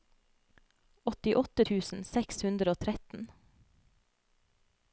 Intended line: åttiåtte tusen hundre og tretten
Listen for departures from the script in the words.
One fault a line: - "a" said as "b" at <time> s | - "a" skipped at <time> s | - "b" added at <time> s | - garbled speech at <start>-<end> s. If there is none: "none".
- "seks" added at 2.1 s